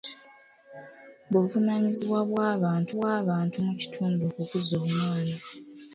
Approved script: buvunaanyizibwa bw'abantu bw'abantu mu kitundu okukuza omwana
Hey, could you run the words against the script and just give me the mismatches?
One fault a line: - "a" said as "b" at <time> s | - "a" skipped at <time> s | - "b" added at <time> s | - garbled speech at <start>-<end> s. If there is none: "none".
none